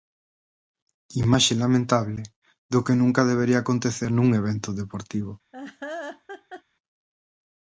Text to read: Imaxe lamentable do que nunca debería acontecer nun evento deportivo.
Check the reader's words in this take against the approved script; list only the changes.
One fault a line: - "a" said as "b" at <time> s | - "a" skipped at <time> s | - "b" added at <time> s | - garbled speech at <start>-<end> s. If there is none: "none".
none